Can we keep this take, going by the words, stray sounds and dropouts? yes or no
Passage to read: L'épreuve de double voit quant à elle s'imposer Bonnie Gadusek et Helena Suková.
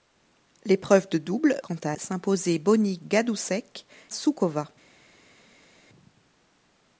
no